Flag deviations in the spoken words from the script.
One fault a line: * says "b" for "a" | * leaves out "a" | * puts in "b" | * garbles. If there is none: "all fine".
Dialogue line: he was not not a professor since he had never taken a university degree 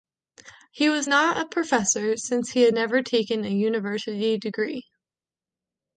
* leaves out "not"